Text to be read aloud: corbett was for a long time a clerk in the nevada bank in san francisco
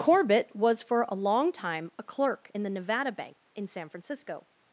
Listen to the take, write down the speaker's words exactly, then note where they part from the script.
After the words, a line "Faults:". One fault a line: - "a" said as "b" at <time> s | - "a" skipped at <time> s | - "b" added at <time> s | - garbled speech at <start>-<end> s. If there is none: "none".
corbett was for a long time a clerk in the nevada bank in san francisco
Faults:
none